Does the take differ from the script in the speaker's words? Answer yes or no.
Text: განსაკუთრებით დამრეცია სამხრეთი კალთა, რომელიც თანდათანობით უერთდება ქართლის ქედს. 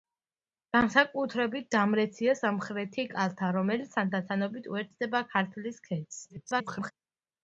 yes